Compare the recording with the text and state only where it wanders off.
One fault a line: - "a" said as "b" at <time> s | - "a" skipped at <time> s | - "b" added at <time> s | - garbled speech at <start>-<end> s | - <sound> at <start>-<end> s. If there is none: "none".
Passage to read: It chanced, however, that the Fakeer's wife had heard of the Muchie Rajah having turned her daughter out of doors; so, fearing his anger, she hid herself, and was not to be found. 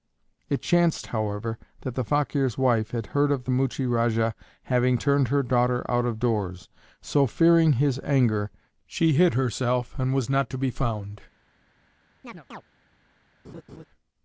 - chirp at 12.2-12.6 s
- laugh at 13.4-13.8 s